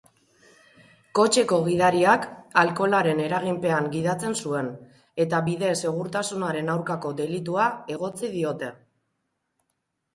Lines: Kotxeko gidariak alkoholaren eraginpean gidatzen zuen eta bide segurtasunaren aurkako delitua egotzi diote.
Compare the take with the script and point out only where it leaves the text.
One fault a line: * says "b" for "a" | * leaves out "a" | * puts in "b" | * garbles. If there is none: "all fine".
all fine